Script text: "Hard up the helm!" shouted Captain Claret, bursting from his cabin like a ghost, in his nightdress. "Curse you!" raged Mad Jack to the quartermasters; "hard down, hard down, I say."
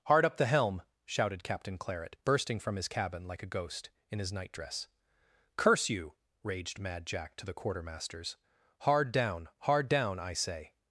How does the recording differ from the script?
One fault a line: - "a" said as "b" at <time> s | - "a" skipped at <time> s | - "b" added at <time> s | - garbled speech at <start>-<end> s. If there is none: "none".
none